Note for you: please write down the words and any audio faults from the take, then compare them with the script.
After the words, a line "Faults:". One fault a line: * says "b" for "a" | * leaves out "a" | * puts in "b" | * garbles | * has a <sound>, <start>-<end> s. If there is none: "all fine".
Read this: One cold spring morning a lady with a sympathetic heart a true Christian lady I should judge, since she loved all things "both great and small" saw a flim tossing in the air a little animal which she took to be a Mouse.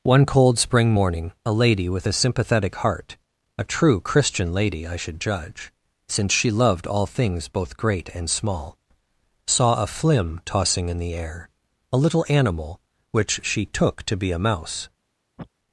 One cold spring morning a lady with a sympathetic heart a true Christian lady I should judge, since she loved all things "both great and small" saw a flim tossing in the air a little animal which she took to be a Mouse.
Faults:
* has a sniff, 15.4-15.5 s